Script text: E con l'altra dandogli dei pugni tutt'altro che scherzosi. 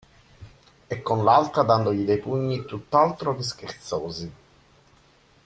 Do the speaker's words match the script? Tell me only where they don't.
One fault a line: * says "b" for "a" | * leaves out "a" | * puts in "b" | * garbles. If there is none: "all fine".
all fine